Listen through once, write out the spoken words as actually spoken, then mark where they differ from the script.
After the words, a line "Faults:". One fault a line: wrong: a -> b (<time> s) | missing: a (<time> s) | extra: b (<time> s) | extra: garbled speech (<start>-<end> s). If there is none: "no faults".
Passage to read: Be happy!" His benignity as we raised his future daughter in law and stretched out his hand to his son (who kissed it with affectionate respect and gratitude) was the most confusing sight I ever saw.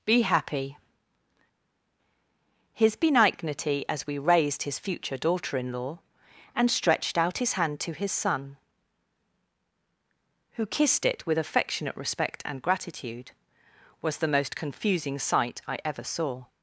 Be happy!" His benignity as we raised his future daughter in law and stretched out his hand to his son (who kissed it with affectionate respect and gratitude) was the most confusing sight I ever saw.
Faults:
no faults